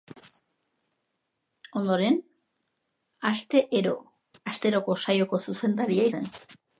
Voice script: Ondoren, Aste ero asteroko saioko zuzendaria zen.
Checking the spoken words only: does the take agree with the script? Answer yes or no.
yes